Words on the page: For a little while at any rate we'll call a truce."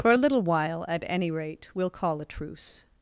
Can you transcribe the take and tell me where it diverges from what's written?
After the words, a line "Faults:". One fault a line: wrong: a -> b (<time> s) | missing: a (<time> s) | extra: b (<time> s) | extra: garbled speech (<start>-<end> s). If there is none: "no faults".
For a little while at any rate we'll call a truce."
Faults:
no faults